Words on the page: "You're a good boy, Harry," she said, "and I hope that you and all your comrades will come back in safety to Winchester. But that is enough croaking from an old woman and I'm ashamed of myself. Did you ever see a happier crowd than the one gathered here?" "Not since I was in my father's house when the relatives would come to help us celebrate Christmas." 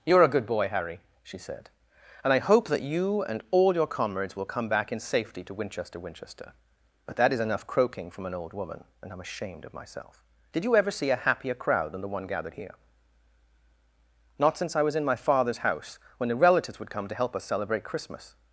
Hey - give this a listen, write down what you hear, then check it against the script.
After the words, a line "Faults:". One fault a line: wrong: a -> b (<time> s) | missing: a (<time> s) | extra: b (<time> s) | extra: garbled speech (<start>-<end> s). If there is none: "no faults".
"You're a good boy, Harry," she said, "and I hope that you and all your comrades will come back in safety to Winchester Winchester. But that is enough croaking from an old woman and I'm ashamed of myself. Did you ever see a happier crowd than the one gathered here?" "Not since I was in my father's house when the relatives would come to help us celebrate Christmas."
Faults:
extra: Winchester (6.0 s)